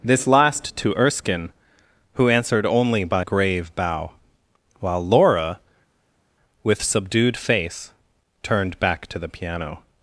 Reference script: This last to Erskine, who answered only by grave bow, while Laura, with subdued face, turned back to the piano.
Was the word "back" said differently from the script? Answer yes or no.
no